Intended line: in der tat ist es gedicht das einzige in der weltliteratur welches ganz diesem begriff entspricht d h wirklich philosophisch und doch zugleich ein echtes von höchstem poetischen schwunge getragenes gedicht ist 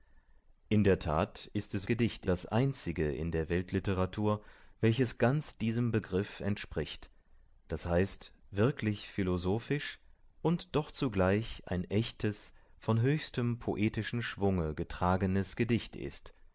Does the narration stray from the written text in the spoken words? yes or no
no